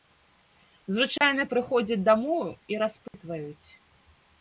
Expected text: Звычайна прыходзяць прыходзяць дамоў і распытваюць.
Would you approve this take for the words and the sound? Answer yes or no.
no